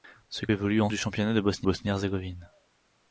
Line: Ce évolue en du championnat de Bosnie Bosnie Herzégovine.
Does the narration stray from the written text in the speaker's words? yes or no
no